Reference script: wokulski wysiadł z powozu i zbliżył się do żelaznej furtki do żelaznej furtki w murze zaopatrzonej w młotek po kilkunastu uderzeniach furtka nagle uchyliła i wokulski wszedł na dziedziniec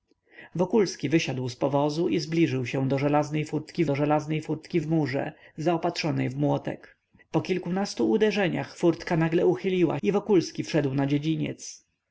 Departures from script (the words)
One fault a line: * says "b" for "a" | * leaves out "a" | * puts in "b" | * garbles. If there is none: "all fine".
all fine